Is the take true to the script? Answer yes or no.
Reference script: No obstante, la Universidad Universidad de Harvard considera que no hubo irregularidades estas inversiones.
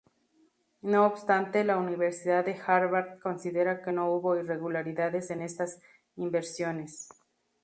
no